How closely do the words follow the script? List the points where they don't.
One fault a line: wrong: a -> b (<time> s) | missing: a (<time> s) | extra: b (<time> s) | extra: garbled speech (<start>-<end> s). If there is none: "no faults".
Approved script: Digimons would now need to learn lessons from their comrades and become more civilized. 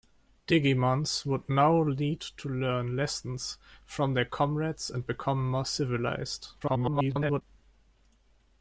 extra: garbled speech (6.6-7.4 s)